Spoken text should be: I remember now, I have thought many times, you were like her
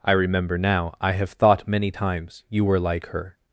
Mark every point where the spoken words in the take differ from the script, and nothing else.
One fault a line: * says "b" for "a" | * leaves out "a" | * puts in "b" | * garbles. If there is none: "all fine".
all fine